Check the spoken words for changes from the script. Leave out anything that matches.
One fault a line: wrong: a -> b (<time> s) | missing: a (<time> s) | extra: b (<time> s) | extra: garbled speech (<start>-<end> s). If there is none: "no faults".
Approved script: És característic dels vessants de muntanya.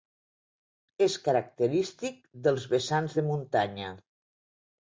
no faults